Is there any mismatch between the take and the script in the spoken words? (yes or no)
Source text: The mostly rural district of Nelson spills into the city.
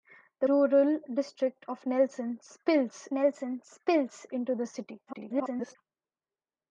yes